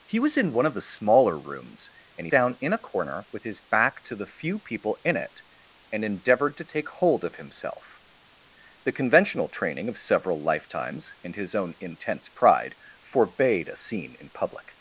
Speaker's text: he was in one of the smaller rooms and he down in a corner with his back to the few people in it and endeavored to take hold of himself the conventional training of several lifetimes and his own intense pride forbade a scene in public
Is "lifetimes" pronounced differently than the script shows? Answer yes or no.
no